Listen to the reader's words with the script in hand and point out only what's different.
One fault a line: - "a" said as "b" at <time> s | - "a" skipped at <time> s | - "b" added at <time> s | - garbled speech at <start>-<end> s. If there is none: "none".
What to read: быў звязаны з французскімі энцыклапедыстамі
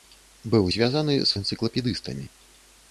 - "французскімі" skipped at 1.4 s